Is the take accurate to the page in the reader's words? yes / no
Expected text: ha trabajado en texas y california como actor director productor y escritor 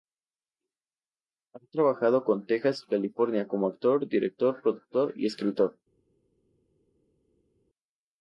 yes